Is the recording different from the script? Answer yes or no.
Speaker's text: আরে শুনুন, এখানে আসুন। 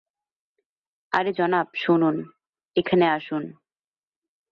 yes